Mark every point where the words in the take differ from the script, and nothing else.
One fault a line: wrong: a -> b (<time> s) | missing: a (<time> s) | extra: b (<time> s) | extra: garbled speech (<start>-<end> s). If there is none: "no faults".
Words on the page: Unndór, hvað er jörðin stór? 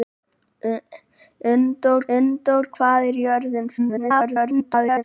extra: unndór (2.2 s)
extra: garbled speech (3.8-5.0 s)